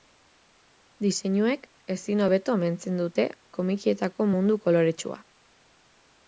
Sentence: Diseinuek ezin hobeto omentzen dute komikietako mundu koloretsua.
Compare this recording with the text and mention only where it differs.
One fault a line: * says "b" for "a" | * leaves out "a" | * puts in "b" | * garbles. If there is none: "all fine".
all fine